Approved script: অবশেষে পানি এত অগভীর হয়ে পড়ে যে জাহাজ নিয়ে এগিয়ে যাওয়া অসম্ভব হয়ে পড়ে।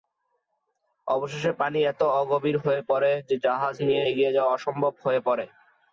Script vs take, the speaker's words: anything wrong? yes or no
no